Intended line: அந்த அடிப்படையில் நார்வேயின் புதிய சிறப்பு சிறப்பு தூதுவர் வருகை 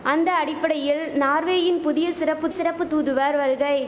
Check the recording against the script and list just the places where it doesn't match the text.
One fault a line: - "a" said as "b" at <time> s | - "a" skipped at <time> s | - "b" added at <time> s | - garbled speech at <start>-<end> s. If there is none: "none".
none